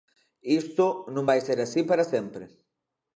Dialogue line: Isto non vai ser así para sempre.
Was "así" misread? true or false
false